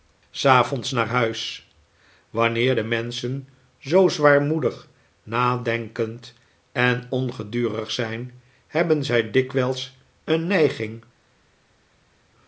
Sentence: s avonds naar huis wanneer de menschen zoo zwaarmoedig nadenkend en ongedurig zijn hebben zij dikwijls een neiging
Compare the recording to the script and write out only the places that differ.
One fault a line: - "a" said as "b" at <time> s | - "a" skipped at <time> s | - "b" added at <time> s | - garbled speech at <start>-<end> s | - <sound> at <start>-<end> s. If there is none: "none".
none